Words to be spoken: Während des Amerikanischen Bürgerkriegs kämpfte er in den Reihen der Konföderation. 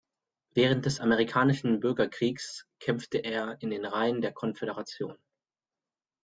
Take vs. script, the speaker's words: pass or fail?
pass